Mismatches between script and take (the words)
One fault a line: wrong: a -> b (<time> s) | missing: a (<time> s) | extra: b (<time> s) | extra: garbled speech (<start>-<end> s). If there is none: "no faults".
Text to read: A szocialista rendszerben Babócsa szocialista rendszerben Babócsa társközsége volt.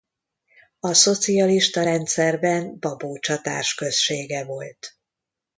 missing: szocialista rendszerben Babócsa (3.4 s)